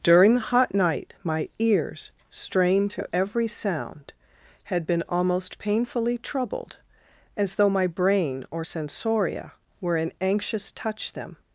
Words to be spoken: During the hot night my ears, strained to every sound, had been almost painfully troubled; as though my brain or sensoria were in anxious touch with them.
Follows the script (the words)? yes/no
no